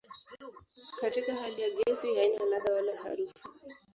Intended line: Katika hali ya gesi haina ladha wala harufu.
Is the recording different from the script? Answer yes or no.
no